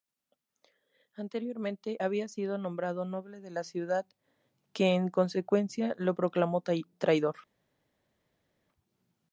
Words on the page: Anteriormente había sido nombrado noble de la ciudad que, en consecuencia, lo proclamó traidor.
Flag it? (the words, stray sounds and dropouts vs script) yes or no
no